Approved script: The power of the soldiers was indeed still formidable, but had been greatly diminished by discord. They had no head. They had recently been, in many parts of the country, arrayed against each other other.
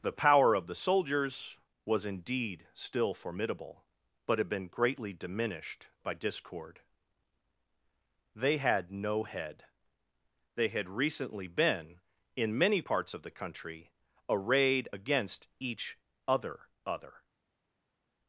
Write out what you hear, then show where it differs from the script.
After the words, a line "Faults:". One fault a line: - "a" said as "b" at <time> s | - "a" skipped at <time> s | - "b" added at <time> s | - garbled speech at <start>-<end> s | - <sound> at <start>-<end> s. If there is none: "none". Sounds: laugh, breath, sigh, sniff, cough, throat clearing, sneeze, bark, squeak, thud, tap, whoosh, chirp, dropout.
The power of the soldiers was indeed still formidable, but had been greatly diminished by discord. They had no head. They had recently been, in many parts of the country, arrayed against each other other.
Faults:
none